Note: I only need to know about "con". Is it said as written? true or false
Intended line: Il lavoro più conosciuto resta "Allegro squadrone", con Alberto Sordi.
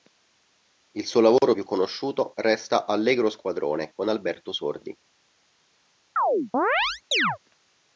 true